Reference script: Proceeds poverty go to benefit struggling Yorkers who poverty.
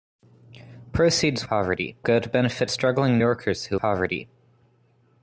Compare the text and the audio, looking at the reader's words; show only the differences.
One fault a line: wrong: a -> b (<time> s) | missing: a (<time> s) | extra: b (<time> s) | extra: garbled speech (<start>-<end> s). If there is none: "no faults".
no faults